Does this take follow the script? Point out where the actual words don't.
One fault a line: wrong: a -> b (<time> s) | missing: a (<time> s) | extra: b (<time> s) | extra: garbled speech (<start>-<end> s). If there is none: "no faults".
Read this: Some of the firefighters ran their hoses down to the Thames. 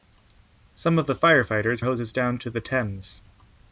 missing: ran their (1.8 s)